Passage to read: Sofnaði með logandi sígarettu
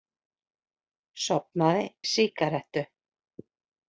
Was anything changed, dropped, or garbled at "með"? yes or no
yes